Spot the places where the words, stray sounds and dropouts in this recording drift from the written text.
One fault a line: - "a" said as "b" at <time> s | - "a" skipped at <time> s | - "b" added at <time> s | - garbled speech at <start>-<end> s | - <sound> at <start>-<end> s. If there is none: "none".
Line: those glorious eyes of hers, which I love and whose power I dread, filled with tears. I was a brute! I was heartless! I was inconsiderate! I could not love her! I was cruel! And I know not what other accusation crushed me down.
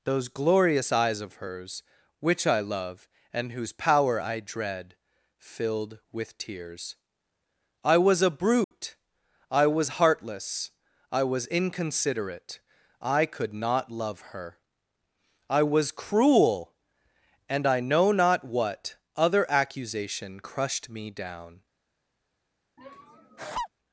- dropout at 8.6-8.7 s
- laugh at 22.8-23.7 s